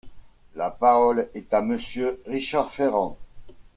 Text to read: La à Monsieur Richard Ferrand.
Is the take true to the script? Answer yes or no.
no